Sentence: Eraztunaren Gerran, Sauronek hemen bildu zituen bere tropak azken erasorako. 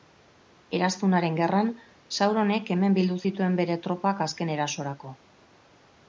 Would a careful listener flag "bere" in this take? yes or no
no